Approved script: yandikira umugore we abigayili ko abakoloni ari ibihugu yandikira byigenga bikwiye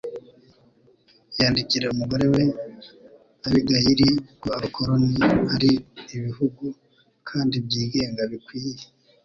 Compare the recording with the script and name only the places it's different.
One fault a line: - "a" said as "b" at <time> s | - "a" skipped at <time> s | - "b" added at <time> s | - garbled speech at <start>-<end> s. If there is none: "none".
- "yandikira" said as "kandi" at 7.3 s